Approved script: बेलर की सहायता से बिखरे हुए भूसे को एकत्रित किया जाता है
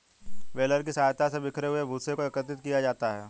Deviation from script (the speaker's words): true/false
false